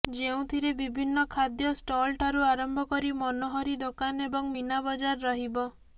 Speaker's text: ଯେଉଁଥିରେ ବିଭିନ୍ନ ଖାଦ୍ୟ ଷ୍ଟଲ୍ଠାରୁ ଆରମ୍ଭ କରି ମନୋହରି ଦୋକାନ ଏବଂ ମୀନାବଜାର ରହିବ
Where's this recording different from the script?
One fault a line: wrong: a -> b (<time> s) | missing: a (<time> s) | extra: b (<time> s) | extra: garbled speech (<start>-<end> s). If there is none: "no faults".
no faults